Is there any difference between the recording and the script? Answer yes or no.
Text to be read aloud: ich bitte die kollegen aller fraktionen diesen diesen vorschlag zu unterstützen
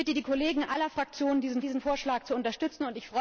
no